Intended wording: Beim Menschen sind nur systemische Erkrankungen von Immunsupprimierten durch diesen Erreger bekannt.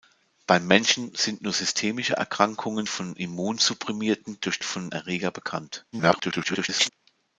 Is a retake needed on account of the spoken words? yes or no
yes